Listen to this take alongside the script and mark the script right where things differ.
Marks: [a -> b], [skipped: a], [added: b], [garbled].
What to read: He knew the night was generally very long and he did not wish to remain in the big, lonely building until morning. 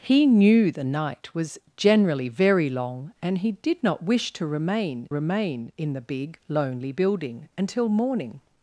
He knew the night was generally very long and he did not wish to remain [added: remain] in the big, lonely building until morning.